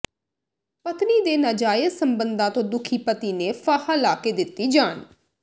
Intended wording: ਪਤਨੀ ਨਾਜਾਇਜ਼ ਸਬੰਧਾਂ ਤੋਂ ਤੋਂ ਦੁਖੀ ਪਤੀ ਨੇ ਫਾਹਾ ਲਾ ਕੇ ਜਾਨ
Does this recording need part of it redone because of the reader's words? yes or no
yes